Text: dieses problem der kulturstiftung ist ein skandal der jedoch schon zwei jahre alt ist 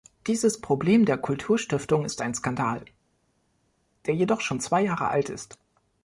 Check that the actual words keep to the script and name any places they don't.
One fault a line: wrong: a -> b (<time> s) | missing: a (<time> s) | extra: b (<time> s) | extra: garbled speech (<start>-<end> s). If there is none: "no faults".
no faults